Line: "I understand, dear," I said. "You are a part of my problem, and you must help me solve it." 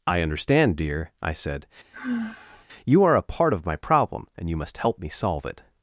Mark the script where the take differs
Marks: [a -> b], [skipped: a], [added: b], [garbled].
"I understand, dear," I said. "You are a part of my problem, and you must help me solve it."